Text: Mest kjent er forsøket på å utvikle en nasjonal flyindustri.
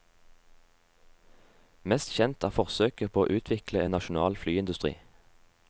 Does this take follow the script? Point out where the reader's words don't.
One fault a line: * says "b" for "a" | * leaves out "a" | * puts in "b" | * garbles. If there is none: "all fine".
all fine